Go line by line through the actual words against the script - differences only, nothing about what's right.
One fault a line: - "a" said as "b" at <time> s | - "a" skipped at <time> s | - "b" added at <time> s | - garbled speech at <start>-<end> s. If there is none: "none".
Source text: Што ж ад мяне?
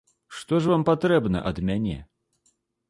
- "вам патрэбна" added at 0.7 s